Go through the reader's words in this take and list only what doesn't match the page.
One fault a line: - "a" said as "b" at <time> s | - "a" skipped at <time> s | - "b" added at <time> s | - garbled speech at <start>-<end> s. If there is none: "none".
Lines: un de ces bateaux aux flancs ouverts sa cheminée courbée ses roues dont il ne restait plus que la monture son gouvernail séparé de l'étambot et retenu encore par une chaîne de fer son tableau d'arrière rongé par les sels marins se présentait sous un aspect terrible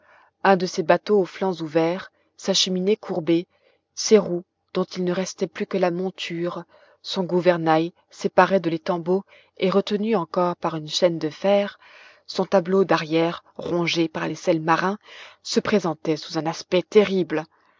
none